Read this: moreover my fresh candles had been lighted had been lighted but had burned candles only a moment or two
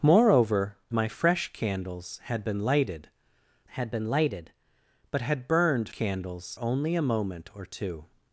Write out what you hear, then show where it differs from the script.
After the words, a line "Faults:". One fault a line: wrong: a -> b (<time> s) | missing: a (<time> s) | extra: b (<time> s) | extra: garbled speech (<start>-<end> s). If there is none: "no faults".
moreover my fresh candles had been lighted had been lighted but had burned candles only a moment or two
Faults:
no faults